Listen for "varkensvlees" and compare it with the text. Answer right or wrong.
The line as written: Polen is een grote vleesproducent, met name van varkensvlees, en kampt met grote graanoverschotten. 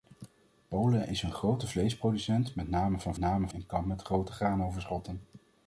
wrong